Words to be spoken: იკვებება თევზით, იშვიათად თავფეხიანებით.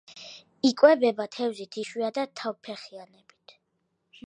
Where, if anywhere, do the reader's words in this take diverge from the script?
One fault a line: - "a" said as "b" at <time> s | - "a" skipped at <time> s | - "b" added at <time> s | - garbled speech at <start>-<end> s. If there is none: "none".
none